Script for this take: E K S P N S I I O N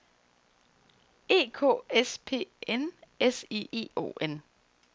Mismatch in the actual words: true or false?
false